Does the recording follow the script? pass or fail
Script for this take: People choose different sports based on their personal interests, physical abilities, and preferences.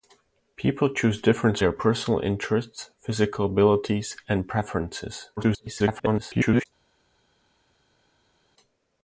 fail